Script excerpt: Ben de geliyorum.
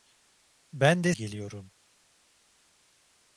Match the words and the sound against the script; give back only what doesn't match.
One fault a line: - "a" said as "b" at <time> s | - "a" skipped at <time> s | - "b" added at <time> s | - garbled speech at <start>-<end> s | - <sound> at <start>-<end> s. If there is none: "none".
none